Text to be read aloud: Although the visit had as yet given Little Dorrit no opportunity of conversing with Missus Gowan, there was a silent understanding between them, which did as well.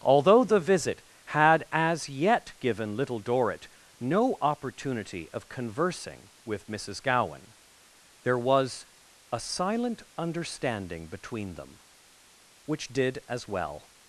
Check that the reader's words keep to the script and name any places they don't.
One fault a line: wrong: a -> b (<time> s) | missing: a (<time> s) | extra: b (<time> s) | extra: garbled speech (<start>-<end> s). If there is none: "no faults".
no faults